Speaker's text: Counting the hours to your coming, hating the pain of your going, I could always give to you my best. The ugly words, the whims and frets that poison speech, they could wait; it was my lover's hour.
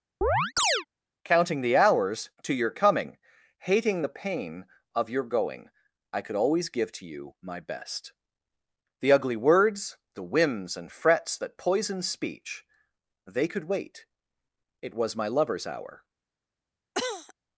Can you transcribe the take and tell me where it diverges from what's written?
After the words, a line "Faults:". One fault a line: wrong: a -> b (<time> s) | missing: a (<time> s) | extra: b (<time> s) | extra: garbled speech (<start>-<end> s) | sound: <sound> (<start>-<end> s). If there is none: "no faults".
Counting the hours to your coming, hating the pain of your going, I could always give to you my best. The ugly words, the whims and frets that poison speech, they could wait; it was my lover's hour.
Faults:
sound: chirp (0.2-0.9 s)
sound: cough (16.9-17.3 s)